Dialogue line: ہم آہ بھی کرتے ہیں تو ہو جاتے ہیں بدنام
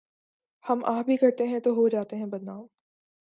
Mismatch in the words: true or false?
false